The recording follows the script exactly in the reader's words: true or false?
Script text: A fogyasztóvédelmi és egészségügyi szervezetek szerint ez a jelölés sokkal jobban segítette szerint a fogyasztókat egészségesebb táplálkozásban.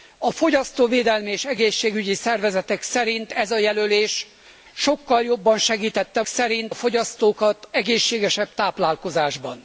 true